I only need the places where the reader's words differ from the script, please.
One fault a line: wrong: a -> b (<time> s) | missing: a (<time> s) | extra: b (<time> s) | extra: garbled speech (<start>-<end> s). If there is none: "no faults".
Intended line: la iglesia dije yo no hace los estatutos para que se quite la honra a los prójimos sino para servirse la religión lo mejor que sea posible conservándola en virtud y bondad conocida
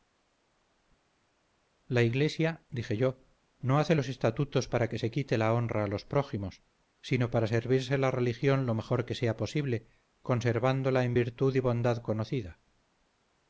no faults